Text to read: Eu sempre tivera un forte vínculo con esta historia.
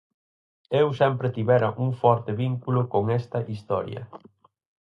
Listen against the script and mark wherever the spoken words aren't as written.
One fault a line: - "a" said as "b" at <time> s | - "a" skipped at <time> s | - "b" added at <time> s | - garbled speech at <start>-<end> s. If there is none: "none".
none